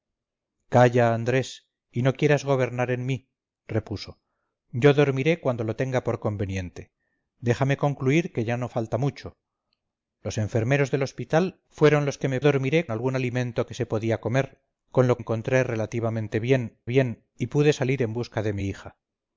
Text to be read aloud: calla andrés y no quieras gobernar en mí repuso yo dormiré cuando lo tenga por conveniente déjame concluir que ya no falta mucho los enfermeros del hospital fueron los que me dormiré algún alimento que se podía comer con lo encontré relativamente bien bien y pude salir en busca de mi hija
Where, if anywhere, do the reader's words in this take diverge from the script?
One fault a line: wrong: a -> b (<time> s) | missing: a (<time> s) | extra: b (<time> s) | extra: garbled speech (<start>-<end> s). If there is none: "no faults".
no faults